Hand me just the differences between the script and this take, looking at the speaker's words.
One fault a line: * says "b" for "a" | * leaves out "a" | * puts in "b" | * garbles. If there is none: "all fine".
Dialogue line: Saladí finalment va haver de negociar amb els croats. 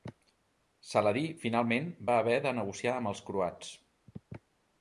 all fine